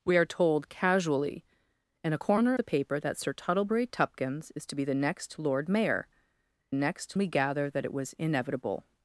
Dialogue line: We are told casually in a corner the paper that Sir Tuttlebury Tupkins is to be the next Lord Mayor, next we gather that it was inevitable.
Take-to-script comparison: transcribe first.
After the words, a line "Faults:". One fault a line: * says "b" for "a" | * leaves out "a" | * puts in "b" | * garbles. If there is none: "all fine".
We are told casually in a corner the paper that Sir Tuttlebury Tupkins is to be the next Lord Mayor, next we gather that it was inevitable.
Faults:
all fine